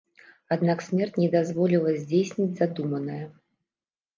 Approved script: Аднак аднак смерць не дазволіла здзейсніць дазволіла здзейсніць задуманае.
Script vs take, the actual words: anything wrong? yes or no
yes